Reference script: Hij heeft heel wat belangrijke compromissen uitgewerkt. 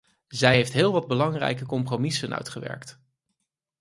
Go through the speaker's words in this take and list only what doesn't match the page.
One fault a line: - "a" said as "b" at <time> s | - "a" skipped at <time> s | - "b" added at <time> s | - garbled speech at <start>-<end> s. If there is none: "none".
- "Hij" said as "Zij" at 0.3 s